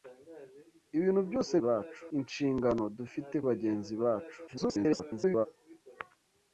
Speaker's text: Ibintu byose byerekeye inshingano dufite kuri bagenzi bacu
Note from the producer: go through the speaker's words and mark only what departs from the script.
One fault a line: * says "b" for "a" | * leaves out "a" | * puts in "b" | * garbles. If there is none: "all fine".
* says "bacu" for "byerekeye"
* leaves out "kuri"
* garbles